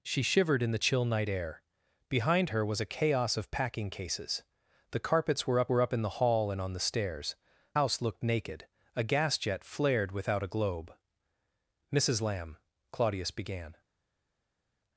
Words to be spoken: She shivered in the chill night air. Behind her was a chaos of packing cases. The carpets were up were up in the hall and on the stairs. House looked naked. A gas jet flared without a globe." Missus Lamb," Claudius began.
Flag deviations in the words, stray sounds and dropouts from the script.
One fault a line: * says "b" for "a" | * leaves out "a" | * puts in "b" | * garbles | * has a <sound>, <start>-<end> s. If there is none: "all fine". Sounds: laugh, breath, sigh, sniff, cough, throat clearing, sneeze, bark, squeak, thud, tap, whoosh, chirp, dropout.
all fine